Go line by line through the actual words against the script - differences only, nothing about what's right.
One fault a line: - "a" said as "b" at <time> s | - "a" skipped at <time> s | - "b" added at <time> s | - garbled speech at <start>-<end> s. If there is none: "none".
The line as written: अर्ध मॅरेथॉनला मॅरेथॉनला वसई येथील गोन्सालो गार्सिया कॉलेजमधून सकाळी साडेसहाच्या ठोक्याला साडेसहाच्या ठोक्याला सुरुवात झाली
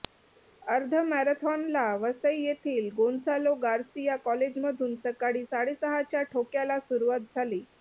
- "मॅरेथॉनला" skipped at 1.8 s
- "साडेसहाच्या ठोक्याला" skipped at 6.8 s